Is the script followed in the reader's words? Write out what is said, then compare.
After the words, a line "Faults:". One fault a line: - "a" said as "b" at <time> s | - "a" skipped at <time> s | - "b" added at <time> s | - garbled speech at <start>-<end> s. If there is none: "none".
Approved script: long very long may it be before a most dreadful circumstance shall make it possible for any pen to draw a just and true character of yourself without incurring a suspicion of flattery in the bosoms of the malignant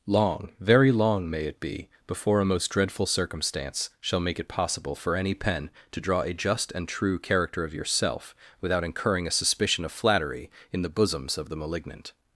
long very long may it be before a most dreadful circumstance shall make it possible for any pen to draw a just and true character of yourself without incurring a suspicion of flattery in the bosoms of the malignant
Faults:
none